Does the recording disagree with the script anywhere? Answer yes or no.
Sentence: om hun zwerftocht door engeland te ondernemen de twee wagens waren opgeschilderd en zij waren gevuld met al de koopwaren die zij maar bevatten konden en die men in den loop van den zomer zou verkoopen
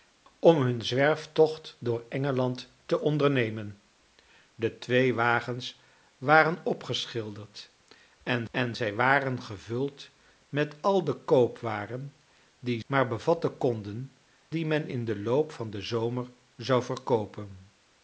yes